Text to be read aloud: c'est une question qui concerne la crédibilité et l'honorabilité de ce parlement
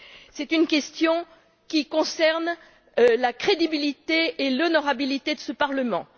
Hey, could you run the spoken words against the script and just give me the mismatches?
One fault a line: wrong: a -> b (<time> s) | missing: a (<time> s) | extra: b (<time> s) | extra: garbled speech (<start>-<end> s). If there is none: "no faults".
no faults